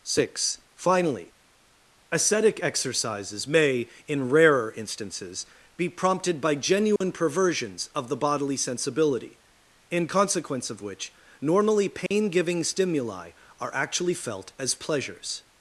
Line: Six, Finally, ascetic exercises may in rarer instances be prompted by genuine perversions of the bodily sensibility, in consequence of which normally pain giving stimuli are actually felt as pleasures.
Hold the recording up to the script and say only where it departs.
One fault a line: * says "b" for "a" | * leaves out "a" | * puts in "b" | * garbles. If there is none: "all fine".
all fine